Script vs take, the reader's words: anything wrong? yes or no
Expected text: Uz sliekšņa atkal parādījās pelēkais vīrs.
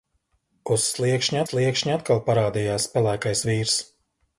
yes